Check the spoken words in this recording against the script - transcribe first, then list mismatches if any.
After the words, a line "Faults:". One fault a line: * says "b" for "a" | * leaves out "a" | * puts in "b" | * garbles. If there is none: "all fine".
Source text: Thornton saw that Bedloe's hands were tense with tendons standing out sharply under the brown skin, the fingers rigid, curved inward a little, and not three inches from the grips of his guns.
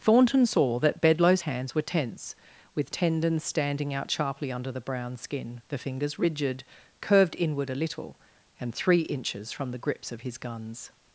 Thornton saw that Bedloe's hands were tense with tendons standing out sharply under the brown skin, the fingers rigid, curved inward a little, and three inches from the grips of his guns.
Faults:
* leaves out "not"